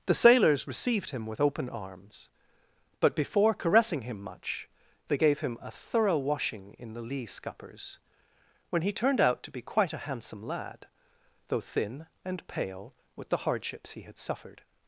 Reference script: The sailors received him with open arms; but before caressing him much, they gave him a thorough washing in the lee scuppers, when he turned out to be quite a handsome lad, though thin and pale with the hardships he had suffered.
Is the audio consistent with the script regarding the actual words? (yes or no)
yes